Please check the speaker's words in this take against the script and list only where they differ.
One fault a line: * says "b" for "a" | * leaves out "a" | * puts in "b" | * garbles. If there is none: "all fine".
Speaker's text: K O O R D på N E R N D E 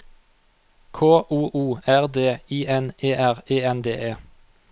* says "I" for "på"
* puts in "E"